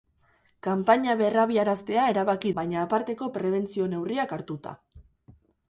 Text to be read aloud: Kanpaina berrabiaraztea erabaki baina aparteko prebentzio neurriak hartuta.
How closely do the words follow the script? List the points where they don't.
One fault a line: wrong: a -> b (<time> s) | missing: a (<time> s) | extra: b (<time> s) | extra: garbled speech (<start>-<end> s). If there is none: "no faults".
no faults